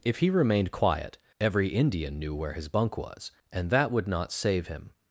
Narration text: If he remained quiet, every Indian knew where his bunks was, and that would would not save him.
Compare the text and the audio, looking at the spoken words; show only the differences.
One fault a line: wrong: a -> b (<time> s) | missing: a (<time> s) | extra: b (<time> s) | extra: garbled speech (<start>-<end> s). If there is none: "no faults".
wrong: bunks -> bunk (2.7 s)
missing: would (4.1 s)